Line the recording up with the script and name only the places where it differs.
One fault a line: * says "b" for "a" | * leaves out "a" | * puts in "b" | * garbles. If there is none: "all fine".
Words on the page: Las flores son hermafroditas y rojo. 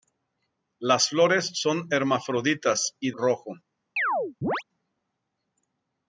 all fine